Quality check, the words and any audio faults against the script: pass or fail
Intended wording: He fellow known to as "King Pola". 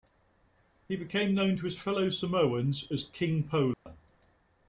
fail